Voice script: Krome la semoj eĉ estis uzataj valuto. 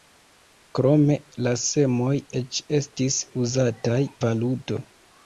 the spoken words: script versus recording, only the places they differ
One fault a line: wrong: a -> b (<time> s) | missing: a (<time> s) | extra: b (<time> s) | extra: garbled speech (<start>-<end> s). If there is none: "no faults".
no faults